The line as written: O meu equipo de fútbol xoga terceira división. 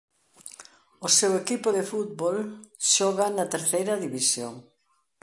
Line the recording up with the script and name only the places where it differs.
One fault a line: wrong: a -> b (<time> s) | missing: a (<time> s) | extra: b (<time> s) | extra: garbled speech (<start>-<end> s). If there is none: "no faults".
wrong: meu -> seu (1.2 s)
extra: na (3.4 s)